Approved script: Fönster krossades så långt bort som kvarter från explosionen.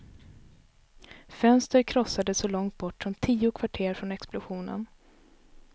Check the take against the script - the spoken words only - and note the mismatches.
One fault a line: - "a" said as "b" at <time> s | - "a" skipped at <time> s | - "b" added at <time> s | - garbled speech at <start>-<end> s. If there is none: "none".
- "tio" added at 3.1 s